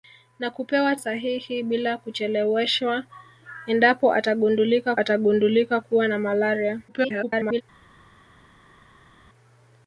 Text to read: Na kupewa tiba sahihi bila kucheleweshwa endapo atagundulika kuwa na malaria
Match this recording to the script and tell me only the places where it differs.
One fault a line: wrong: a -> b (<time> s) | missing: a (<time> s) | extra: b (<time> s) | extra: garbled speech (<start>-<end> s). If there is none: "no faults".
missing: tiba (0.9 s)
extra: atagundulika (5.0 s)
extra: garbled speech (6.9-7.6 s)